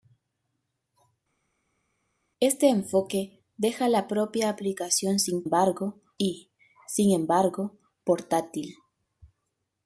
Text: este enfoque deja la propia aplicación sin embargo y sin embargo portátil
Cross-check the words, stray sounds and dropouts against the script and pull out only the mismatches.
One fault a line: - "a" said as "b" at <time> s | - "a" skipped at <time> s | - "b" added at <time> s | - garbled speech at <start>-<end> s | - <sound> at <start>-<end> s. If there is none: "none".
none